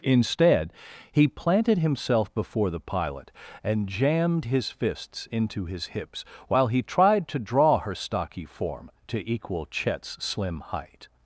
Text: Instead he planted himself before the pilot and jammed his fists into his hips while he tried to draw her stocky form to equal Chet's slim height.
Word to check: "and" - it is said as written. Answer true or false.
true